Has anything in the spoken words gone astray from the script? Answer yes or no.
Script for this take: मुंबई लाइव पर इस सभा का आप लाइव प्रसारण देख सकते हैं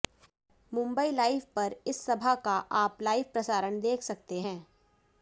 no